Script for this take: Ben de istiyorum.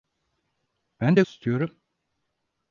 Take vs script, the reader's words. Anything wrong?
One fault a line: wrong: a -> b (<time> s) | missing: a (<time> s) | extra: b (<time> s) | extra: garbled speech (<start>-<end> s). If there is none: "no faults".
no faults